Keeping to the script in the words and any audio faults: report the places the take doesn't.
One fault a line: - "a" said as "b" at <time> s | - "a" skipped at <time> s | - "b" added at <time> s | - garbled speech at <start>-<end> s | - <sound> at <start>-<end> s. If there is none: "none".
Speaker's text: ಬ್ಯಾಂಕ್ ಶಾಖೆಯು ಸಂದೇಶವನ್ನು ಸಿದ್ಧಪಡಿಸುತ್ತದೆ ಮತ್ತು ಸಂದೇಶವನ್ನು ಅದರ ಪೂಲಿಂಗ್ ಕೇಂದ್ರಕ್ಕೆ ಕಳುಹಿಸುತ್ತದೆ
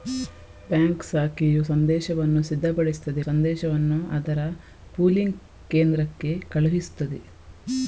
- "ಮತ್ತು" skipped at 3.2 s